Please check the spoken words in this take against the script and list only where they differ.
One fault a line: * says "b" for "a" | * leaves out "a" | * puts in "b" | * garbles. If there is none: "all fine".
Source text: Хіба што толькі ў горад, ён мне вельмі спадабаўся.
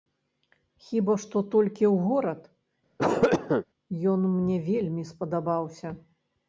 all fine